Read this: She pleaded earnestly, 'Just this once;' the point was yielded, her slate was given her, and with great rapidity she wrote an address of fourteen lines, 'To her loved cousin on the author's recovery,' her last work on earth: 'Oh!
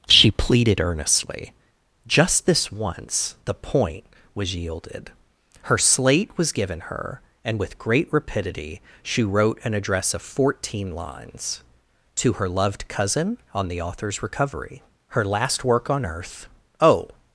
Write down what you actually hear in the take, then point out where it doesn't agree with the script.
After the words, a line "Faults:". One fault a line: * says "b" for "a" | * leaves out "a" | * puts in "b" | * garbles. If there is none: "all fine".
She pleaded earnestly, 'Just this once;' the point was yielded, her slate was given her, and with great rapidity she wrote an address of fourteen lines, 'To her loved cousin on the author's recovery,' her last work on earth: 'Oh!
Faults:
all fine